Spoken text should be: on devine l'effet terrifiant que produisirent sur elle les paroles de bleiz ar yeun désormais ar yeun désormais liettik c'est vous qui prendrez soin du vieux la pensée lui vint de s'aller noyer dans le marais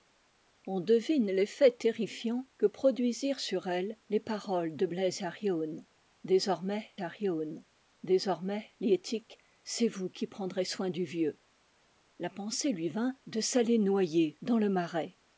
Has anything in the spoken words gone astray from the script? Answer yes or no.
no